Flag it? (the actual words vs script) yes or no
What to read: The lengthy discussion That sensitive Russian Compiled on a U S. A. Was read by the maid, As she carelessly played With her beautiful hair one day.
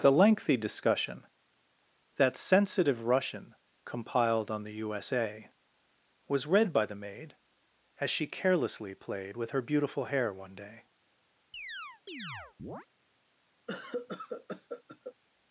yes